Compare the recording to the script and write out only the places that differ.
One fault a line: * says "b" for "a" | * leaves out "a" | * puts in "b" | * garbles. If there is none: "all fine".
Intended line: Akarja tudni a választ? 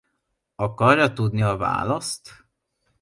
all fine